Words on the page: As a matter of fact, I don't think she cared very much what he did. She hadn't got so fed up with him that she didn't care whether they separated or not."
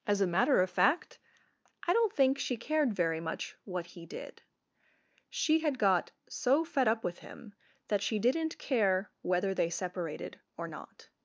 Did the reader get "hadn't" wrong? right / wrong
wrong